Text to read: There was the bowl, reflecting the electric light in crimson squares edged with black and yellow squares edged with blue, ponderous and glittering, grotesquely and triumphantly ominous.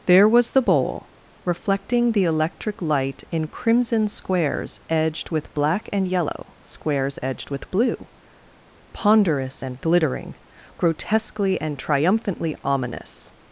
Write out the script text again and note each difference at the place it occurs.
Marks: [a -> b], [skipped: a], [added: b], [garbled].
There was the bowl, reflecting the electric light in crimson squares edged with black and yellow squares edged with blue, ponderous and glittering, grotesquely and triumphantly ominous.